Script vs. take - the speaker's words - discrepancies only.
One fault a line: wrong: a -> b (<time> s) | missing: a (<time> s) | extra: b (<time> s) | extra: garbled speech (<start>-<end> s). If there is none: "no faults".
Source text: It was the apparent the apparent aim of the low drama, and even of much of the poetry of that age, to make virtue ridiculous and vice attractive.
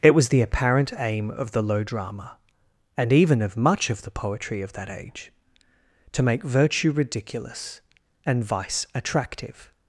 missing: the apparent (0.9 s)